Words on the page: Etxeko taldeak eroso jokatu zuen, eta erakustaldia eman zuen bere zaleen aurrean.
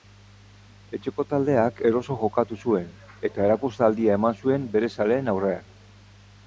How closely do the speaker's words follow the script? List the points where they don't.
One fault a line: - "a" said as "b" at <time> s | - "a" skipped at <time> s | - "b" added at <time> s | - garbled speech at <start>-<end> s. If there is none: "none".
none